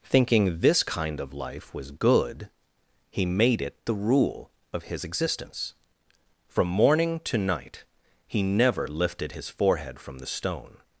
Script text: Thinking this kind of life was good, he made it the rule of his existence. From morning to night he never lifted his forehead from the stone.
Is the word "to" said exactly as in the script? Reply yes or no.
yes